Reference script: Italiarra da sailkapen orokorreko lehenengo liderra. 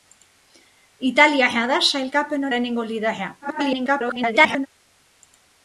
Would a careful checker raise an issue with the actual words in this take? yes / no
yes